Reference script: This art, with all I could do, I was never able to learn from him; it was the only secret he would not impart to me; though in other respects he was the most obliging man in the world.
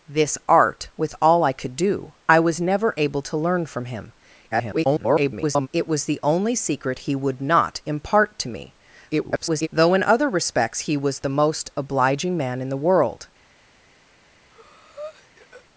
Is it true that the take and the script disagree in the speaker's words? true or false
true